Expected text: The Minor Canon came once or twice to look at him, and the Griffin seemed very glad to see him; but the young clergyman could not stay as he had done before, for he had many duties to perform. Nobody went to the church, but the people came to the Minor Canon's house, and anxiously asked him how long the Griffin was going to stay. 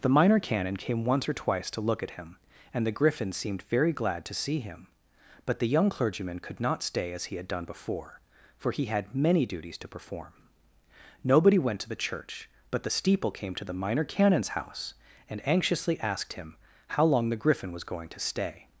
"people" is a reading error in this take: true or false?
true